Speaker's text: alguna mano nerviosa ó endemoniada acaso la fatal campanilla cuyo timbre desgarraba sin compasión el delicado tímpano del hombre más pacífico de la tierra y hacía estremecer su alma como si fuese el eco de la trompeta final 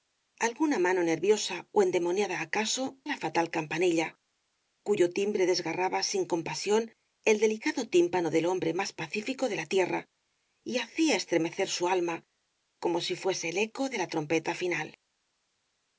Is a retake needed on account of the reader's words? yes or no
no